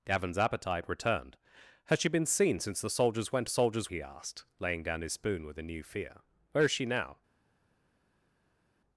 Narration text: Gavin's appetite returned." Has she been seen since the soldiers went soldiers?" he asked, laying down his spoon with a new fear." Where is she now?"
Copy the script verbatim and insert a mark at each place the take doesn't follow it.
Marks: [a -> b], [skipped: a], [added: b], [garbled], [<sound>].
Gavin's appetite returned." Has she been seen since the soldiers went soldiers?" he asked, laying down his spoon with a new fear." Where is she now?"